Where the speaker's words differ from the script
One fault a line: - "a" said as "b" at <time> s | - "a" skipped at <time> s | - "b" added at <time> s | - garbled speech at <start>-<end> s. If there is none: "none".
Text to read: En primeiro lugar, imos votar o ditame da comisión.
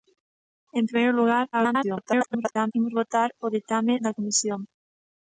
- garbled speech at 1.5-2.7 s